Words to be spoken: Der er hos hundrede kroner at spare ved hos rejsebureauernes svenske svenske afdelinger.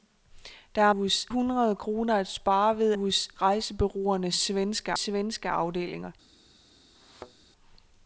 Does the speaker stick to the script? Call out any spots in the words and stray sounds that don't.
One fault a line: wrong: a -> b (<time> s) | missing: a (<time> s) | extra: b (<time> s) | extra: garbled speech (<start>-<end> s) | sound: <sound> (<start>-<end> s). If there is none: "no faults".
sound: thud (6.9-7.5 s)